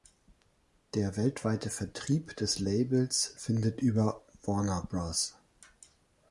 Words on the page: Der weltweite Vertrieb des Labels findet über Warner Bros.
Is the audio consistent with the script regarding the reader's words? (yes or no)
yes